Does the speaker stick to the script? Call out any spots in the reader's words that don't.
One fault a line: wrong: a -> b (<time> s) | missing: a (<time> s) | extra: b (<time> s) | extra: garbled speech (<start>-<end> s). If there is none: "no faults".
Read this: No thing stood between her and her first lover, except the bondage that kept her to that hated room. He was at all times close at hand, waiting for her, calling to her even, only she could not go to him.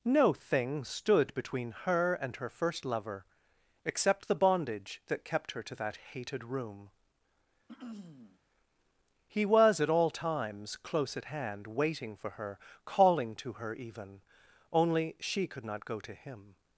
no faults